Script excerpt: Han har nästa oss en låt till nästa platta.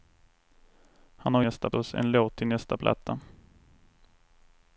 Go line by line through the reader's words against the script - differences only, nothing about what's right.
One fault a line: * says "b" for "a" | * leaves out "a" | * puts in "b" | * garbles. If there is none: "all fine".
all fine